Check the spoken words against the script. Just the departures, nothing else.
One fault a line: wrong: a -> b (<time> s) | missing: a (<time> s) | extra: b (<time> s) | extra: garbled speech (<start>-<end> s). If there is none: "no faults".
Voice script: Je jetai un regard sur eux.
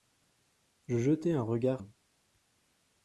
missing: sur (1.8 s)